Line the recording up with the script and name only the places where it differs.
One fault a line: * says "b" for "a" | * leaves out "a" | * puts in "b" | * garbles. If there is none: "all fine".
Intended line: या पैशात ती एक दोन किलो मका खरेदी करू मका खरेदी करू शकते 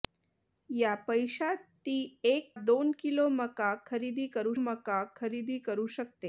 all fine